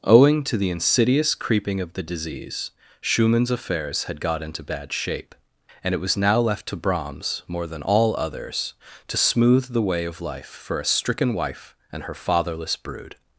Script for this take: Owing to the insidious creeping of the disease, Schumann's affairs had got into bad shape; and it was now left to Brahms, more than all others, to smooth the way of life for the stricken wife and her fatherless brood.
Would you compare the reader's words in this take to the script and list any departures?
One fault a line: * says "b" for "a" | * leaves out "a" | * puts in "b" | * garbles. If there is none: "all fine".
* says "a" for "the"